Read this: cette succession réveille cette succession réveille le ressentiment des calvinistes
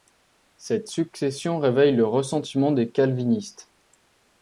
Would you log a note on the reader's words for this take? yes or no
yes